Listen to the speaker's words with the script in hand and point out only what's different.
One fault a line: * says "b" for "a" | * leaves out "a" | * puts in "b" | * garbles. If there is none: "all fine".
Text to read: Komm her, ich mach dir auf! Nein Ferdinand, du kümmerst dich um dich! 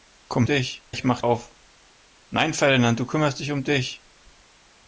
* says "dich" for "her"
* leaves out "dir"